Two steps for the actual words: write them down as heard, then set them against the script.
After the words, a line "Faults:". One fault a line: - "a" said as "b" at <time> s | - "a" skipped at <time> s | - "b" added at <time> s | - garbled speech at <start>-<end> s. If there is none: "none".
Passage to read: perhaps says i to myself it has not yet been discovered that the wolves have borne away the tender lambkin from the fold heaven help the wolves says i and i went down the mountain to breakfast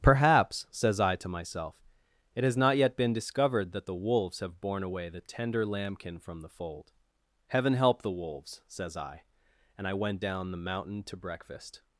perhaps says i to myself it has not yet been discovered that the wolves have borne away the tender lambkin from the fold heaven help the wolves says i and i went down the mountain to breakfast
Faults:
none